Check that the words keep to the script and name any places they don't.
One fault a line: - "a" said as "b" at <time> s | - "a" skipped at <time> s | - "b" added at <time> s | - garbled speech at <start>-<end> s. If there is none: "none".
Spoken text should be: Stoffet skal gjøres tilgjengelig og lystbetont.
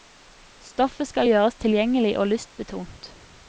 none